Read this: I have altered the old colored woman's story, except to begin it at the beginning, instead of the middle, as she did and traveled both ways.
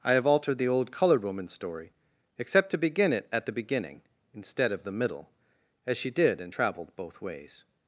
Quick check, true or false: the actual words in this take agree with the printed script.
true